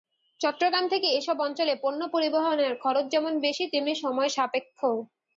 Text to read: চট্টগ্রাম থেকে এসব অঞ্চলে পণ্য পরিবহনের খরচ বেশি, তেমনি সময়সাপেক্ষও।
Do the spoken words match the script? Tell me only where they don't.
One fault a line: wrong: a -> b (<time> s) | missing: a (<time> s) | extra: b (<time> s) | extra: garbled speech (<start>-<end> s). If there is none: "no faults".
extra: যেমন (3.1 s)